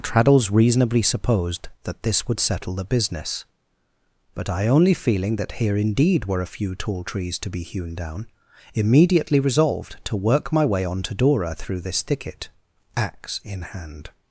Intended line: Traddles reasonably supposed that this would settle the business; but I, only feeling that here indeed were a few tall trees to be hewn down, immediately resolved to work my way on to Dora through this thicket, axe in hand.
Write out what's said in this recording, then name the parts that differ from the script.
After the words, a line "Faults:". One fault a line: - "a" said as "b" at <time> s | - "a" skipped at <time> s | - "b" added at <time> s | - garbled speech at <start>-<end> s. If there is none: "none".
Traddles reasonably supposed that this would settle the business; but I, only feeling that here indeed were a few tall trees to be hewn down, immediately resolved to work my way on to Dora through this thicket, axe in hand.
Faults:
none